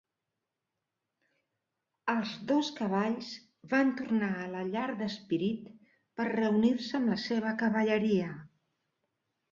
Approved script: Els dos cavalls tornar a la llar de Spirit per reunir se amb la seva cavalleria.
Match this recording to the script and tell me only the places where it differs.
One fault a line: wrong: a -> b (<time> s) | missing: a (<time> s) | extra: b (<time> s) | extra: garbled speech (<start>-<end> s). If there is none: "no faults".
extra: van (3.7 s)